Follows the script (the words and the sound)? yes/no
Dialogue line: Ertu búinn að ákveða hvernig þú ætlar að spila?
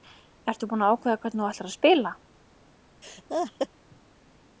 no